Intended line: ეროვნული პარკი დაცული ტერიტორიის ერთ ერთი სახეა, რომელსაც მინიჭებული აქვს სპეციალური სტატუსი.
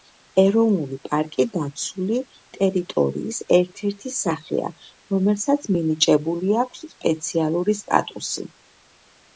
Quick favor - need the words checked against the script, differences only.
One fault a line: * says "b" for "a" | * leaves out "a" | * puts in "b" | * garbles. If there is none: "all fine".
all fine